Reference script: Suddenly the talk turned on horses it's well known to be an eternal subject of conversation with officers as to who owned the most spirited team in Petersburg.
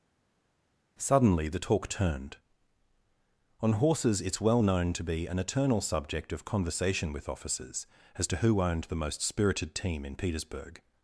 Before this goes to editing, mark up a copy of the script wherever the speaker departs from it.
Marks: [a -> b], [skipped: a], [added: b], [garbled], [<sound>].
Suddenly the talk turned on horses it's well known to be an eternal subject of conversation with officers as to who owned the most spirited team in Petersburg.